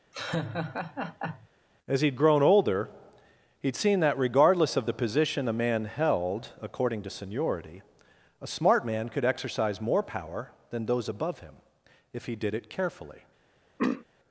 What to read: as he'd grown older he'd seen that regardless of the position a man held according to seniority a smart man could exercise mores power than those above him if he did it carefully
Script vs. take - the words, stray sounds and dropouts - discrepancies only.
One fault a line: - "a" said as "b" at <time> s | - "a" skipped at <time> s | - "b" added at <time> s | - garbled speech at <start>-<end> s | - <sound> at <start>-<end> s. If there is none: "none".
- laugh at 0.1-1.5 s
- "mores" said as "more" at 9.8 s
- throat clearing at 13.8-14.1 s